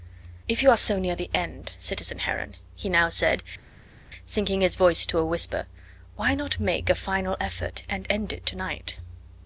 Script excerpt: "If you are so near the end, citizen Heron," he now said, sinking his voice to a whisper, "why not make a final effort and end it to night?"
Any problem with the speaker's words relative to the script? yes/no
no